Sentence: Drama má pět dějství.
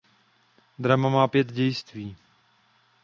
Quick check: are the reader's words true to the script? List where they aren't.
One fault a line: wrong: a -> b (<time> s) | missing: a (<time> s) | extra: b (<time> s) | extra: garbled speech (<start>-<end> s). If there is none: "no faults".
no faults